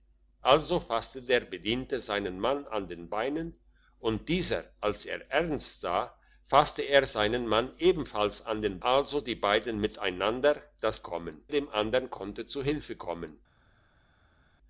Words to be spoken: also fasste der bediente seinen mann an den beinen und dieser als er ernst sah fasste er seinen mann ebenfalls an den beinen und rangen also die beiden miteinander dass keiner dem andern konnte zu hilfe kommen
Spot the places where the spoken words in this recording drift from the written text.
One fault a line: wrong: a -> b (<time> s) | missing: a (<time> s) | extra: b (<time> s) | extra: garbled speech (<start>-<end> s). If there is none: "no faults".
missing: beinen und rangen (8.8 s)
wrong: keiner -> kommen (11.0 s)